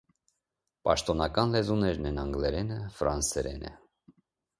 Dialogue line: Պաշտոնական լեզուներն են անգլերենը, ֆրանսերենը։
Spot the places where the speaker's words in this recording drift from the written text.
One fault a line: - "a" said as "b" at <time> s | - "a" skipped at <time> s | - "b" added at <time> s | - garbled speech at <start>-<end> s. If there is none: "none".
none